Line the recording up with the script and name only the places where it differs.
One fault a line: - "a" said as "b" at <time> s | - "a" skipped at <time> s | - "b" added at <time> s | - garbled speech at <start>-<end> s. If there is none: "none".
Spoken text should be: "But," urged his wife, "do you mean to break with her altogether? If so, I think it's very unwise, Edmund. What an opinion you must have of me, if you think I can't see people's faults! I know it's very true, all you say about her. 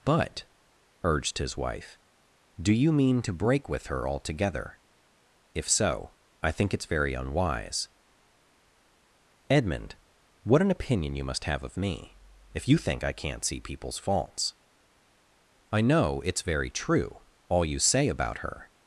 none